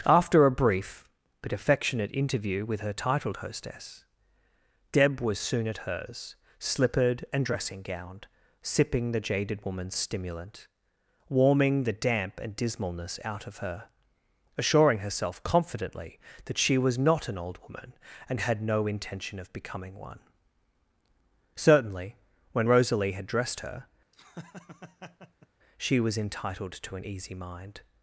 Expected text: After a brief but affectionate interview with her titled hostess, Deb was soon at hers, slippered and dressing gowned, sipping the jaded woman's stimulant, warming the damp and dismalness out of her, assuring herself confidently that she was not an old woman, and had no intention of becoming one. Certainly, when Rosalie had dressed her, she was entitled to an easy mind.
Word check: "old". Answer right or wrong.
right